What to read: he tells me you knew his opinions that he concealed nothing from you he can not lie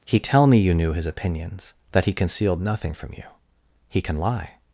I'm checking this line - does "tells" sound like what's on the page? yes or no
no